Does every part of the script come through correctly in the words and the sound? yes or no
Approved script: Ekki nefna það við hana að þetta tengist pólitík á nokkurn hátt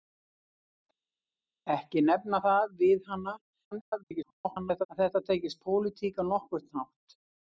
no